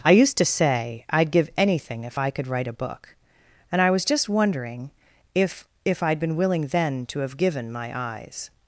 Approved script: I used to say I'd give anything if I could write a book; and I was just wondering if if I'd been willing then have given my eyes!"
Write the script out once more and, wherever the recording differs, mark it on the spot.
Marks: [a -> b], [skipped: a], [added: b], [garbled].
I used to say I'd give anything if I could write a book; and I was just wondering if if I'd been willing then [added: to] have given my eyes!"